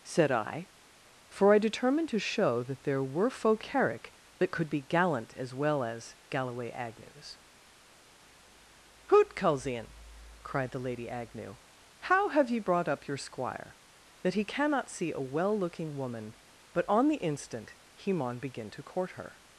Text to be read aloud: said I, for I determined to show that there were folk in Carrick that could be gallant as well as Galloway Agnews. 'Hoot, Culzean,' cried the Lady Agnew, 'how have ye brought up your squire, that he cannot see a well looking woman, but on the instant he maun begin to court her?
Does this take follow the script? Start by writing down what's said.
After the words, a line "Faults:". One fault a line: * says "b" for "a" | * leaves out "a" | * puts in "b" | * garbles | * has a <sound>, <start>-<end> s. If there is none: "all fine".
said I, for I determined to show that there were folk Carrick that could be gallant as well as Galloway Agnews. 'Hoot, Culzean,' cried the Lady Agnew, 'how have ye brought up your squire, that he cannot see a well looking woman, but on the instant he maun begin to court her?
Faults:
* leaves out "in"